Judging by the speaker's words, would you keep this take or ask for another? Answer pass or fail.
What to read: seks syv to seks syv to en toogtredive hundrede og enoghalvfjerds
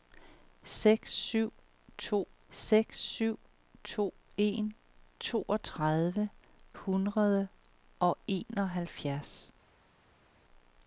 pass